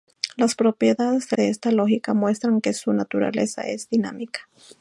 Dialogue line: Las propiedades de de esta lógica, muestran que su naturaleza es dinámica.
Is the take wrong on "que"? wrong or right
right